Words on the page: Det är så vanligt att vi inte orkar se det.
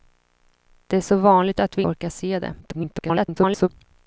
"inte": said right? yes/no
no